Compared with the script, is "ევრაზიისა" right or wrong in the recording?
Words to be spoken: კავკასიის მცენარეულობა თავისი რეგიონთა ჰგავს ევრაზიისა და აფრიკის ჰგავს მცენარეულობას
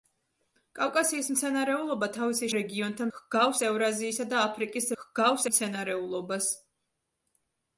right